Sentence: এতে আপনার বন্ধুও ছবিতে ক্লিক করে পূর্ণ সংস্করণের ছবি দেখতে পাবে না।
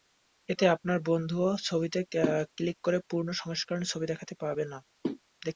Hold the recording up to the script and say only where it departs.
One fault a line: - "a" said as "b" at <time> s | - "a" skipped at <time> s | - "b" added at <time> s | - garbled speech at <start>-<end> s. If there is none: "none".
none